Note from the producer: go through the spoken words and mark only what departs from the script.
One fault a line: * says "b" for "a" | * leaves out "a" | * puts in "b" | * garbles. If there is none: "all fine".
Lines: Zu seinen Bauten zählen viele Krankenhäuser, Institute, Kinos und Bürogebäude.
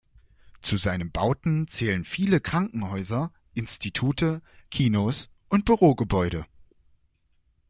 all fine